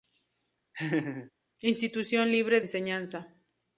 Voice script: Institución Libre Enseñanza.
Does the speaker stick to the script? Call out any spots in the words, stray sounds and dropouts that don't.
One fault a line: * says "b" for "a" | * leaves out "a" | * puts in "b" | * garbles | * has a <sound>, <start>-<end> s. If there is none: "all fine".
* has a laugh, 0.7-1.3 s